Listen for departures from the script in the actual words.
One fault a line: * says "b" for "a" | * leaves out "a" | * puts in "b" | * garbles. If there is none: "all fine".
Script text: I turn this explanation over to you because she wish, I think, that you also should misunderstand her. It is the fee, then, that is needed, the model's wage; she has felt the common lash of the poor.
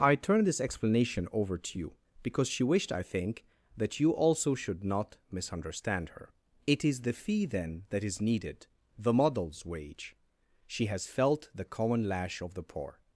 * says "wished" for "wish"
* puts in "not"